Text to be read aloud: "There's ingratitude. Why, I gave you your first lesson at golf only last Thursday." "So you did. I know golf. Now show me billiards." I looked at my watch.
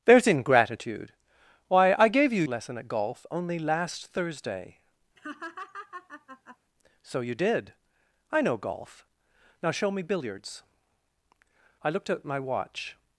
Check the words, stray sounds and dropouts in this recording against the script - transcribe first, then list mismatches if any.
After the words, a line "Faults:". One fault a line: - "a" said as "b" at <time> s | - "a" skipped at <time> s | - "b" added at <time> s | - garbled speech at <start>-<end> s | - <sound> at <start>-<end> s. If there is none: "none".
"There's ingratitude. Why, I gave you lesson at golf only last Thursday." "So you did. I know golf. Now show me billiards." I looked at my watch.
Faults:
- "your first" skipped at 2.4 s
- laugh at 5.2-6.6 s